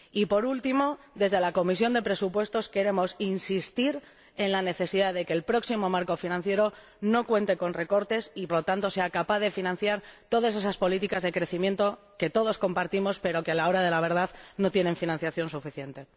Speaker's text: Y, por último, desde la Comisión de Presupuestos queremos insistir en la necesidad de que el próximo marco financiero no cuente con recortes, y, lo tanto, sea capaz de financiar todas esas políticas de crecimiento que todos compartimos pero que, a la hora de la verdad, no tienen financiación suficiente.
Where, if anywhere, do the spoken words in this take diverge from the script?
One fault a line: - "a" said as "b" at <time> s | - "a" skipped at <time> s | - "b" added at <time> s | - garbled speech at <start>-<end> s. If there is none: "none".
none